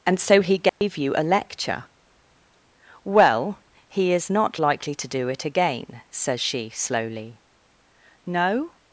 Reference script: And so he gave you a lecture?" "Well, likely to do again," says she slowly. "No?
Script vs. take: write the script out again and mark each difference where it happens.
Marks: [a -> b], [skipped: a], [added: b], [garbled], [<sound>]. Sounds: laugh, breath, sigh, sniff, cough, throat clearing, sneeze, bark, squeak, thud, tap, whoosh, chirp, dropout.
And so he gave [dropout] you a lecture?" "Well, [added: he is not] likely to do [added: it] again," says she slowly. "No?